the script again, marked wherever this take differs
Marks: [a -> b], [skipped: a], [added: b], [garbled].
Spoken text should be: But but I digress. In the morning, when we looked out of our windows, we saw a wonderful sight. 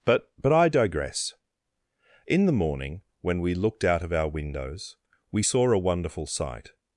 But but I digress. In the morning, when we looked out of our windows, we saw a wonderful sight.